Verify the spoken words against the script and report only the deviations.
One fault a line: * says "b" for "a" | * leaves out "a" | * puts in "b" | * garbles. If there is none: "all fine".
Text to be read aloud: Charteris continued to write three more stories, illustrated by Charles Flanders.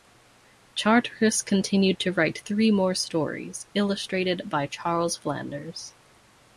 all fine